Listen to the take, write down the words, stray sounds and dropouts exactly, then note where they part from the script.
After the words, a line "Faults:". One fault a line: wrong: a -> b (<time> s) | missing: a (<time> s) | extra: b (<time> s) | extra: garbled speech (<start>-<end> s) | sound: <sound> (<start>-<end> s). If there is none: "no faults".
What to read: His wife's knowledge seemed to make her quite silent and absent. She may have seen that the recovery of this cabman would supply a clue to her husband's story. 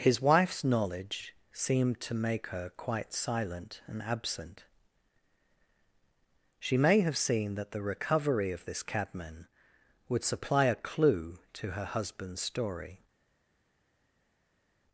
His wife's knowledge seemed to make her quite silent and absent. She may have seen that the recovery of this cabman would supply a clue to her husband's story.
Faults:
no faults